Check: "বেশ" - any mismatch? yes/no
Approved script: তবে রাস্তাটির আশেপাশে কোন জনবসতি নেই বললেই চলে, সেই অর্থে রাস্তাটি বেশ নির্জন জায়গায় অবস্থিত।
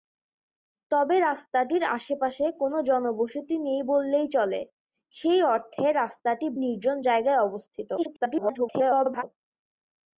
yes